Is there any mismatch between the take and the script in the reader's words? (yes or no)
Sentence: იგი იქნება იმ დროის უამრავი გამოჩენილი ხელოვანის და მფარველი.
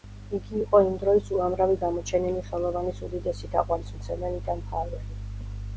yes